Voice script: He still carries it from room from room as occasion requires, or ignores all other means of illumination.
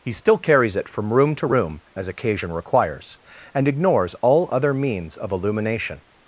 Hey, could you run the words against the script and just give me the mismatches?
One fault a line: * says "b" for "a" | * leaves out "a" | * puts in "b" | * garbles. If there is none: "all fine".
* says "to" for "from"
* says "and" for "or"